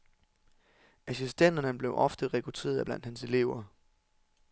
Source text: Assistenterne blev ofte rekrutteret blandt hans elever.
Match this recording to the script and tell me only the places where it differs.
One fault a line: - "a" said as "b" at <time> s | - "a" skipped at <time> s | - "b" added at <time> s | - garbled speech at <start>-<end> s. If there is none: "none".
none